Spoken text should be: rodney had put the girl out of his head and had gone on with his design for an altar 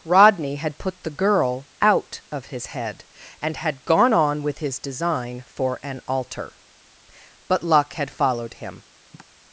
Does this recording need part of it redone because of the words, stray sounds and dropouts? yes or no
yes